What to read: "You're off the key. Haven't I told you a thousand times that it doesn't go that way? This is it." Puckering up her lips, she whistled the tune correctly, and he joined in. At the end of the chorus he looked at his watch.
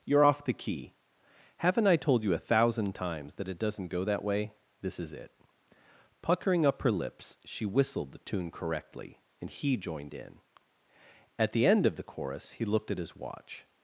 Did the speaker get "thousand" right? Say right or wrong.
right